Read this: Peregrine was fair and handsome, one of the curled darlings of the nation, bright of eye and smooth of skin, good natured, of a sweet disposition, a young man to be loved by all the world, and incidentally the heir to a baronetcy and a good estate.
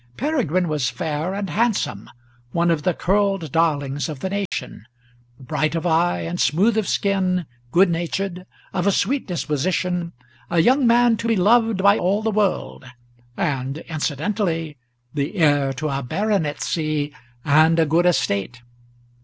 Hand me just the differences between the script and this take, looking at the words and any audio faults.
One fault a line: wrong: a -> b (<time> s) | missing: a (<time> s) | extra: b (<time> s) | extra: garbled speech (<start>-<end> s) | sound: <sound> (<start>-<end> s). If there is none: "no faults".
sound: dropout (4.5-4.5 s)